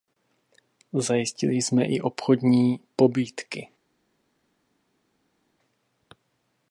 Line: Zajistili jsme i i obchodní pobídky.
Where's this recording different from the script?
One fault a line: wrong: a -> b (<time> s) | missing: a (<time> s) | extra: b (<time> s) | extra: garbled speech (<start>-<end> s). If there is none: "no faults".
missing: i (2.0 s)